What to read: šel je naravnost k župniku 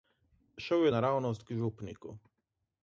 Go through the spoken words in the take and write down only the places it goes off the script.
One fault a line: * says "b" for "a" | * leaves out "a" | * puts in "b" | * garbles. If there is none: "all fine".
all fine